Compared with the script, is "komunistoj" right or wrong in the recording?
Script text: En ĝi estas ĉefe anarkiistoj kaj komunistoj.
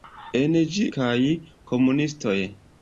right